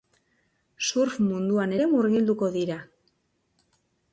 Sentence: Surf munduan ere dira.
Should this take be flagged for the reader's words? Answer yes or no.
yes